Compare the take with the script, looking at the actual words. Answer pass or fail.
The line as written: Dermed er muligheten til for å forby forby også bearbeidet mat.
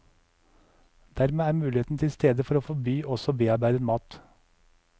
fail